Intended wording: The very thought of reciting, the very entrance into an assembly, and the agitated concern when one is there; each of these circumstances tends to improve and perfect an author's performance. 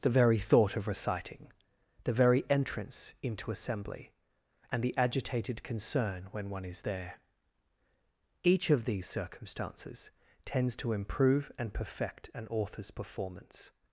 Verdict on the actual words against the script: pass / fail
fail